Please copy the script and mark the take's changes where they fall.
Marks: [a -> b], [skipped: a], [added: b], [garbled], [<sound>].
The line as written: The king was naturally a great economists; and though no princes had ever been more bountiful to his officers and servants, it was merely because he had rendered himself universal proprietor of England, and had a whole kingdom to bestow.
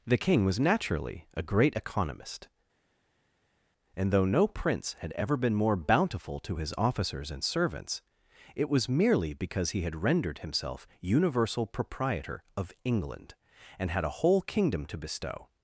The king was naturally a great [economists; -> economist] and though no [princes -> prince] had ever been more bountiful to his officers and servants, it was merely because he had rendered himself universal proprietor of England, and had a whole kingdom to bestow.